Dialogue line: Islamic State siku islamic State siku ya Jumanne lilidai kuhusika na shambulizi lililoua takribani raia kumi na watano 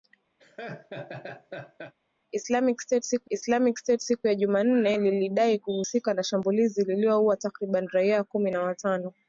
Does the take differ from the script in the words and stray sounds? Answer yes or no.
yes